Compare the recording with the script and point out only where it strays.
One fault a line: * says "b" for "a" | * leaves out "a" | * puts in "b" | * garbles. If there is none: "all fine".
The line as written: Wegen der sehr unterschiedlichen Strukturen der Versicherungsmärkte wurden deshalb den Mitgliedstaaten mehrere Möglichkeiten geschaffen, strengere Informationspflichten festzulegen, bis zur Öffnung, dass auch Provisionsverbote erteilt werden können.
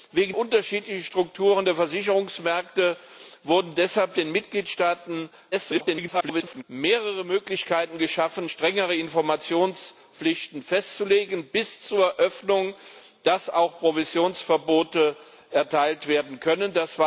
* leaves out "der sehr"
* garbles